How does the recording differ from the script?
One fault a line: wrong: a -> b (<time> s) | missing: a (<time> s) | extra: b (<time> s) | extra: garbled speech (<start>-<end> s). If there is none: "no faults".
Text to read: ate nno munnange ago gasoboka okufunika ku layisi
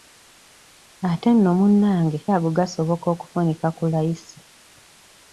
no faults